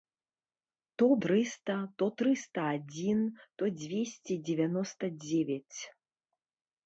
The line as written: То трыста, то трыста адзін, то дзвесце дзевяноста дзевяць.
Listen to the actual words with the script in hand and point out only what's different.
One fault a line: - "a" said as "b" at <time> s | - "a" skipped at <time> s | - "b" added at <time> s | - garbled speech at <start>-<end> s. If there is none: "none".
none